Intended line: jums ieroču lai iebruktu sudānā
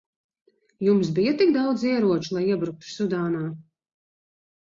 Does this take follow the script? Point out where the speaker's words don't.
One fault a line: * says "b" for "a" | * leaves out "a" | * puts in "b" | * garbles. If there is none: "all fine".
* puts in "bija tik daudz"